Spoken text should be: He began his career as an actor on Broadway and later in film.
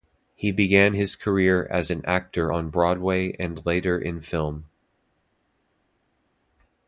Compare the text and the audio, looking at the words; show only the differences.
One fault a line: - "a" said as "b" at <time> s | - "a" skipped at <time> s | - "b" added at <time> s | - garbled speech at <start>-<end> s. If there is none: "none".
none